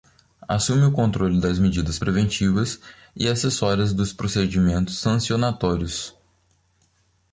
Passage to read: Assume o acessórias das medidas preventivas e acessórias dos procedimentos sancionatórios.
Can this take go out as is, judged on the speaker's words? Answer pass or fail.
fail